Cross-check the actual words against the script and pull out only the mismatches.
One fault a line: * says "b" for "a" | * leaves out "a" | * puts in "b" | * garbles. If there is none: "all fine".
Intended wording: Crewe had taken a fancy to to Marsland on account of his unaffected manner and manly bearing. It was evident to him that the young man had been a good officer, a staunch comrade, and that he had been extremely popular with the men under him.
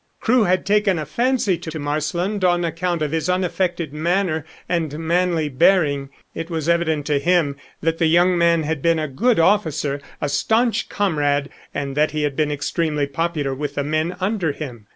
all fine